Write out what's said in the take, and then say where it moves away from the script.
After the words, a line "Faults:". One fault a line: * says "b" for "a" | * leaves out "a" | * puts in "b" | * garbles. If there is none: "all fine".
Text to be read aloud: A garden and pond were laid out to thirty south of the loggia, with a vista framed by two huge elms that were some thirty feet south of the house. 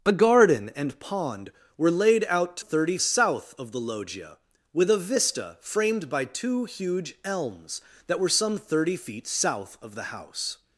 A garden and pond were laid out to thirty south of the loggia, with a vista framed by two huge elms that were some thirty feet south of the house.
Faults:
all fine